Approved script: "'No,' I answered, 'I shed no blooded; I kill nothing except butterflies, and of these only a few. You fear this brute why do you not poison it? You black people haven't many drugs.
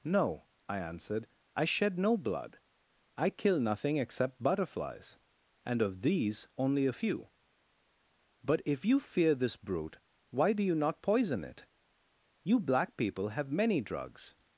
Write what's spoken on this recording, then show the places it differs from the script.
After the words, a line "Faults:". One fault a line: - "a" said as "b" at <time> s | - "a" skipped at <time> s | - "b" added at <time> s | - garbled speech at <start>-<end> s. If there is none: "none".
"'No,' I answered, 'I shed no blood; I kill nothing except butterflies, and of these only a few. But if you fear this brute why do you not poison it? You black people have many drugs.
Faults:
- "blooded" said as "blood" at 2.2 s
- "But if" added at 8.4 s
- "haven't" said as "have" at 13.3 s